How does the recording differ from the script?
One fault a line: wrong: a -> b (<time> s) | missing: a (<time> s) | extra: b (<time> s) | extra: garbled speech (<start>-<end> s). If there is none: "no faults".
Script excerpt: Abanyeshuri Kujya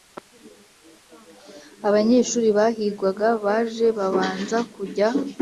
extra: Bahigwaga Baje Babanza (2.6 s)